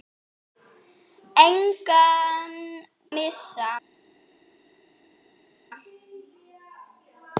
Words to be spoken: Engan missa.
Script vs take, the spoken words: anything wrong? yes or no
no